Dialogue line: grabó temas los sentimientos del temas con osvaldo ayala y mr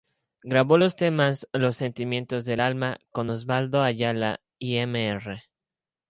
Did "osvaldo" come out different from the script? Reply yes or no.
no